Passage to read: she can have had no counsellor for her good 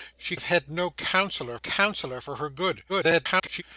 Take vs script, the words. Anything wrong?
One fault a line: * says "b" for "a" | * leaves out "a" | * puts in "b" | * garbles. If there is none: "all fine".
* leaves out "can"
* puts in "counsellor"
* garbles